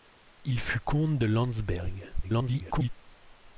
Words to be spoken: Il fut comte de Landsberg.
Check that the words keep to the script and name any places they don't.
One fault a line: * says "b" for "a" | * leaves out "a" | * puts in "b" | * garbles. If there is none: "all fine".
* garbles